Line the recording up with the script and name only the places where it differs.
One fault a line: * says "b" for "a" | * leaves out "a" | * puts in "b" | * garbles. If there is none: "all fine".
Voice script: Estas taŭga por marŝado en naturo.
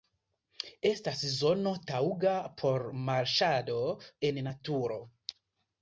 * puts in "zono"